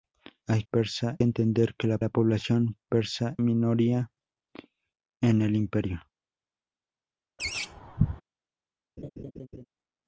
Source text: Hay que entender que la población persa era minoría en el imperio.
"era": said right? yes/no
no